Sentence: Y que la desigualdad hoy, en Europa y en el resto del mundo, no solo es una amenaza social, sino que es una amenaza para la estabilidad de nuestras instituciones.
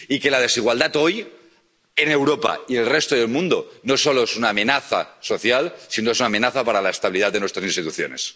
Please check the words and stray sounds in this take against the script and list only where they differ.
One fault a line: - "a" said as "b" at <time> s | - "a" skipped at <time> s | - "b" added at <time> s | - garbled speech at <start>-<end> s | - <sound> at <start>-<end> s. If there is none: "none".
none